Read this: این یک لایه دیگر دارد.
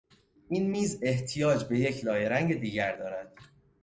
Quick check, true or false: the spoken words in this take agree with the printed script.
false